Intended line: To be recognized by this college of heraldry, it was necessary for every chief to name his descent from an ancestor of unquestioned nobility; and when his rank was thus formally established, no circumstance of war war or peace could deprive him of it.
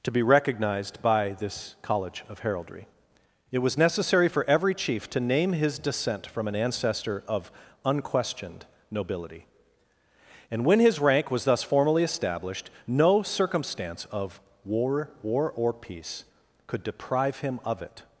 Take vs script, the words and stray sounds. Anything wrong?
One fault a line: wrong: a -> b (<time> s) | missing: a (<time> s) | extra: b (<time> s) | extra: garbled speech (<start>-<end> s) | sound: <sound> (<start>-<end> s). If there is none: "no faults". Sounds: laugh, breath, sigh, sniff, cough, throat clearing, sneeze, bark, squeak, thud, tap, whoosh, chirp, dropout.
no faults